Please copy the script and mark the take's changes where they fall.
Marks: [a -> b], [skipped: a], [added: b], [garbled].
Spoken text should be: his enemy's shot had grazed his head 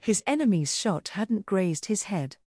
his enemy's shot [had -> hadn't] grazed his head